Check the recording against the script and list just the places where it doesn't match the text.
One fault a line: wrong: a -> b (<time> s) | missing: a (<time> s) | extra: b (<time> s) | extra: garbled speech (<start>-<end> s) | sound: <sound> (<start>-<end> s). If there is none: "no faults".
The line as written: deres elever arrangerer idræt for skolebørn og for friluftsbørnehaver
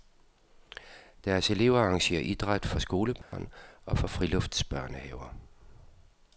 sound: dropout (3.2-3.3 s)